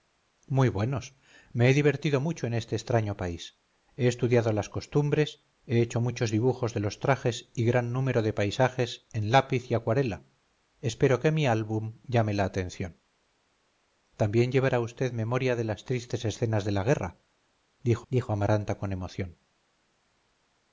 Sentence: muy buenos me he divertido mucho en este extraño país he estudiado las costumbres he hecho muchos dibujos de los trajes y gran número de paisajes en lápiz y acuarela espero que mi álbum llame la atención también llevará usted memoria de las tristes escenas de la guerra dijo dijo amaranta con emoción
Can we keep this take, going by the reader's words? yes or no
yes